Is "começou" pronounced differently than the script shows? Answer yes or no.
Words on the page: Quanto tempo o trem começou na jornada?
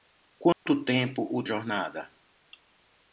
yes